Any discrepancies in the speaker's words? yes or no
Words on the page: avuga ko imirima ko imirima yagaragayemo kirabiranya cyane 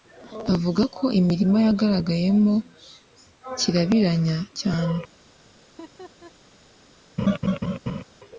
yes